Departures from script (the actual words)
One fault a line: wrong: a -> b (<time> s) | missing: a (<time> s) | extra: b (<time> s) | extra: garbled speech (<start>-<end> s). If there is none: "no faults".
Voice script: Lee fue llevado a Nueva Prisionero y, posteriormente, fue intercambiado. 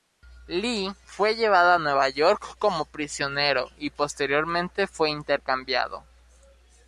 extra: York como (2.1 s)